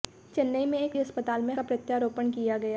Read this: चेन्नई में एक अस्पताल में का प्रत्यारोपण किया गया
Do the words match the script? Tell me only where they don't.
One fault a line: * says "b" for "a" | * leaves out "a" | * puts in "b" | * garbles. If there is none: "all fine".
all fine